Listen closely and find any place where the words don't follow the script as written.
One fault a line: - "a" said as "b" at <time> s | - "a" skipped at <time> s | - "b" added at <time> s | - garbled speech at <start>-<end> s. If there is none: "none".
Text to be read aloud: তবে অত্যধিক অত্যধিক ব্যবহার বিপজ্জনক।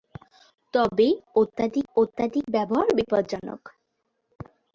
none